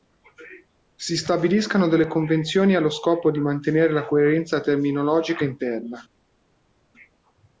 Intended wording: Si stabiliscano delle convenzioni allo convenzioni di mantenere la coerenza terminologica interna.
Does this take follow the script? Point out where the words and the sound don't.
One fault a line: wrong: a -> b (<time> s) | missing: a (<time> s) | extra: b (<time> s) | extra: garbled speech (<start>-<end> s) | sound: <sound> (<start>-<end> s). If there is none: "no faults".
wrong: convenzioni -> scopo (2.9 s)